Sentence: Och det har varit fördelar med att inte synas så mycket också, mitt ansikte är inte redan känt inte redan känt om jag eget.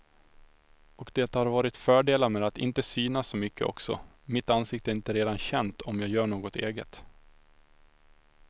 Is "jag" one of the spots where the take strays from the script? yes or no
yes